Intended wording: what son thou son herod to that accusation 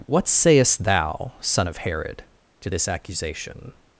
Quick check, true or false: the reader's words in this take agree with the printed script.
false